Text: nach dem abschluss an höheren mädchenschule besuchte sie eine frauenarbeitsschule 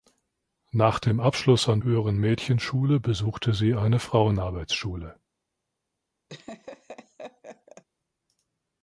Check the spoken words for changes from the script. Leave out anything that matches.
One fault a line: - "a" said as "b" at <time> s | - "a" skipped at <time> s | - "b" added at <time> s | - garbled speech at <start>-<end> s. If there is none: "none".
none